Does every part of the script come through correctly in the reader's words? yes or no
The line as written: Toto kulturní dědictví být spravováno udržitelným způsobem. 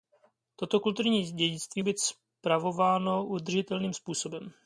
yes